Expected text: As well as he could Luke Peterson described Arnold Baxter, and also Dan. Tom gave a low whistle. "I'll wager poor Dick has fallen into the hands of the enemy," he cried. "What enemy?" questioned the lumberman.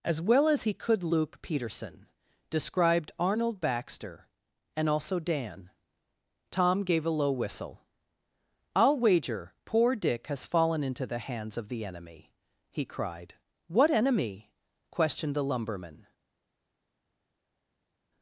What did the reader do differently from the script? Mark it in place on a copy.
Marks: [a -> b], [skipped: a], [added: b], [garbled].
As well as he could Luke Peterson described Arnold Baxter, and also Dan. Tom gave a low whistle. "I'll wager poor Dick has fallen into the hands of the enemy," he cried. "What enemy?" questioned the lumberman.